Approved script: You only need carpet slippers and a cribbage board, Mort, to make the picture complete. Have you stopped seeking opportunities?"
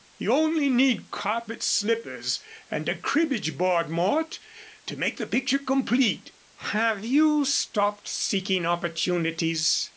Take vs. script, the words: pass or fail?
pass